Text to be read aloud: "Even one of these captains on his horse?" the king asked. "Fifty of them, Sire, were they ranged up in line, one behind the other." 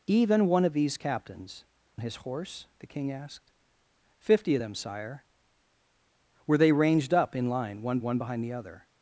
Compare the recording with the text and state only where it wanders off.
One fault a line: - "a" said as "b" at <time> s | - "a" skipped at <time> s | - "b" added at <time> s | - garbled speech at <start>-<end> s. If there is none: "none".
- "on" skipped at 1.6 s
- "one" added at 8.0 s